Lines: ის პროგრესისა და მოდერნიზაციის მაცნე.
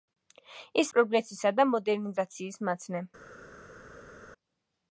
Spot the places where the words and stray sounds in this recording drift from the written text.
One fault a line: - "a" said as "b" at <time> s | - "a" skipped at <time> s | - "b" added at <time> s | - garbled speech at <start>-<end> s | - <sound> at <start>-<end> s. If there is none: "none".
none